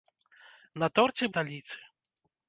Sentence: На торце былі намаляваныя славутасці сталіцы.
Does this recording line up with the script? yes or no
no